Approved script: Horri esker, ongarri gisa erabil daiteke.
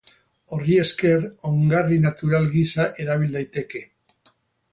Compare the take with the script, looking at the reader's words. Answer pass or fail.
fail